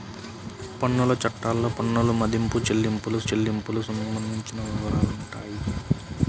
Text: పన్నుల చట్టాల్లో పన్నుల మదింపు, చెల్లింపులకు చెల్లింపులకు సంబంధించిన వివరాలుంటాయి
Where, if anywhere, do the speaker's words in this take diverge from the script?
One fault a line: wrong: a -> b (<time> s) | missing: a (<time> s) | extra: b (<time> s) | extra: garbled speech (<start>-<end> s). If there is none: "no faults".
no faults